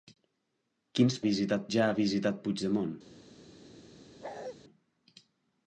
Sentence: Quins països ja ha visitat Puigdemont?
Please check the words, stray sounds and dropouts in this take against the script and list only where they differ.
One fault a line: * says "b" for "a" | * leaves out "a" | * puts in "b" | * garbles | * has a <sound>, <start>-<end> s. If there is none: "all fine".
* says "visitat" for "països"
* has a bark, 4.2-4.6 s